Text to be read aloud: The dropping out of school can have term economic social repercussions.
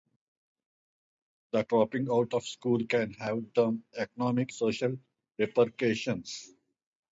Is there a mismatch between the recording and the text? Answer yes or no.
no